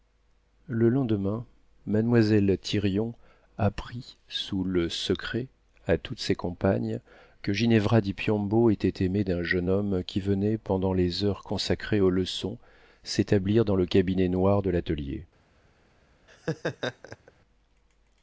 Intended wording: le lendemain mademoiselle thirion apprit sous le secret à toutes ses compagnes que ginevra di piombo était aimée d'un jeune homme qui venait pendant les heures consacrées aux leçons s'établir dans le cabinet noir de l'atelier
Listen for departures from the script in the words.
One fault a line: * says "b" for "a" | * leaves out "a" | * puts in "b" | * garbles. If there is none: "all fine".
all fine